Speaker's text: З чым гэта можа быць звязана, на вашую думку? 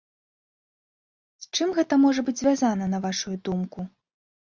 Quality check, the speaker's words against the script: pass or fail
pass